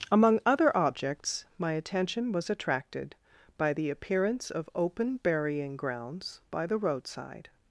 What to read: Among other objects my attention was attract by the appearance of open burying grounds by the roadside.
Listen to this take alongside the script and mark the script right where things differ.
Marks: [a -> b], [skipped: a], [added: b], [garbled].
Among other objects my attention was [attract -> attracted] by the appearance of open burying grounds by the roadside.